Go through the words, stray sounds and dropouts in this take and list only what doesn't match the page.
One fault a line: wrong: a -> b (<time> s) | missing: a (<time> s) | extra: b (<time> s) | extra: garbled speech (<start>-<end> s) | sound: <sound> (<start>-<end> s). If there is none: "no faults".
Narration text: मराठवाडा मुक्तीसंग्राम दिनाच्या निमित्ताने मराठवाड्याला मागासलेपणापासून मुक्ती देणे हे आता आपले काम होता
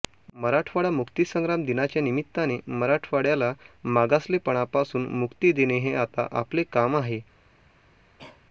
wrong: होता -> आहे (7.0 s)
sound: cough (8.2-8.4 s)